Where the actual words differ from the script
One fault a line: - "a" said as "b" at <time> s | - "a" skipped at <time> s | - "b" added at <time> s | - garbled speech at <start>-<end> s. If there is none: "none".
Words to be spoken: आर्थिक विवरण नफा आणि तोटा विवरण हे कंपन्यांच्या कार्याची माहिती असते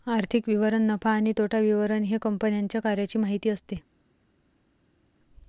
none